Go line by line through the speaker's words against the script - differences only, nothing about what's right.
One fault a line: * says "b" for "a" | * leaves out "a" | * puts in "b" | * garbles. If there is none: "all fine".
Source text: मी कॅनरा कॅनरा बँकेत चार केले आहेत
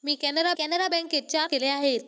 all fine